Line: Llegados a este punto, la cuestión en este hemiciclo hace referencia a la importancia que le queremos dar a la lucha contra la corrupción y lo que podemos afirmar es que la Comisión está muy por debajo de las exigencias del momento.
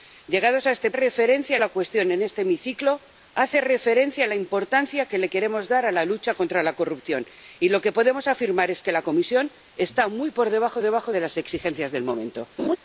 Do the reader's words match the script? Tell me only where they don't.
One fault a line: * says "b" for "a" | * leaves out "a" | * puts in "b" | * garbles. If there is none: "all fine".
* says "referencia" for "punto"
* puts in "debajo"